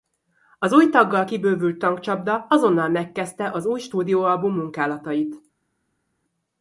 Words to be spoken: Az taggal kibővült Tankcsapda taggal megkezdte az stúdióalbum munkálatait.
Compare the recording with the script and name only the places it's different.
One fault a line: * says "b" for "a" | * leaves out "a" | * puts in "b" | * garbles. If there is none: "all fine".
* puts in "új"
* says "azonnal" for "taggal"
* puts in "új"